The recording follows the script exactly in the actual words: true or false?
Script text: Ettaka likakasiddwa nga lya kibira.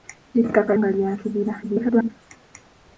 false